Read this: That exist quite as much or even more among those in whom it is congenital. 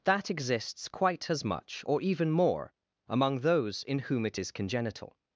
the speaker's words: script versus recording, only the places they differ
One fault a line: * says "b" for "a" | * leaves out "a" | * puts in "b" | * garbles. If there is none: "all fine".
* says "exists" for "exist"